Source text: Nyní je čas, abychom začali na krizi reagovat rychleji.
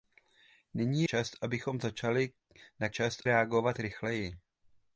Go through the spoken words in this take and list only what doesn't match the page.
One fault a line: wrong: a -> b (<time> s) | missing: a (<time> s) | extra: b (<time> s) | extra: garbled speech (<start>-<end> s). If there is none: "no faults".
missing: je (1.0 s)
wrong: krizi -> čas (2.9 s)